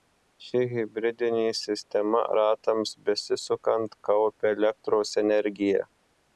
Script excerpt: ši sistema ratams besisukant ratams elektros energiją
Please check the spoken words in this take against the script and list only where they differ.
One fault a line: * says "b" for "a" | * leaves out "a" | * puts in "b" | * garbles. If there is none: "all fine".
* puts in "hibridinė"
* says "kaupia" for "ratams"